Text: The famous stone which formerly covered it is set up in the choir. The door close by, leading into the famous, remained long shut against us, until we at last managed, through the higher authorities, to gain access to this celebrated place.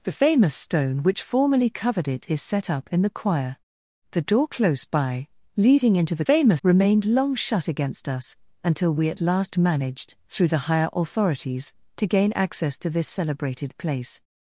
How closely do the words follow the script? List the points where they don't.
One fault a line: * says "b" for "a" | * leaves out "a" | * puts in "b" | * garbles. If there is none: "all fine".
all fine